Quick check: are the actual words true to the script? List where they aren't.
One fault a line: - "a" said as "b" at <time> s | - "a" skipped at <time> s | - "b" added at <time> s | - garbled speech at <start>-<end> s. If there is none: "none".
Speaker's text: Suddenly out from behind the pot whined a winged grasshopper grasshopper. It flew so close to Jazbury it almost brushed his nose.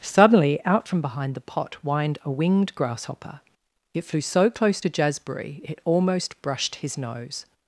- "grasshopper" skipped at 3.4 s